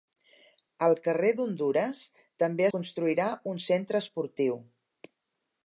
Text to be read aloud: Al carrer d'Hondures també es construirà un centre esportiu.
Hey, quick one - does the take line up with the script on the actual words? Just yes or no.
no